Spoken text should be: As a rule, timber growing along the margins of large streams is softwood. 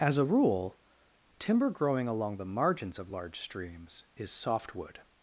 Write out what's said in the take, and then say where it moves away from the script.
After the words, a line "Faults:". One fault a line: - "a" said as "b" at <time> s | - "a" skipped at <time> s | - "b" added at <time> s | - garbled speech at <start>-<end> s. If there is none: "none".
As a rule, timber growing along the margins of large streams is softwood.
Faults:
none